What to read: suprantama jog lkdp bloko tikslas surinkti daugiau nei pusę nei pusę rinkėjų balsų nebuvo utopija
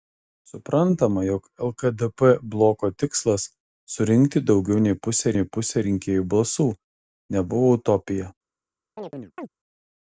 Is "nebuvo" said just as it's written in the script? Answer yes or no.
yes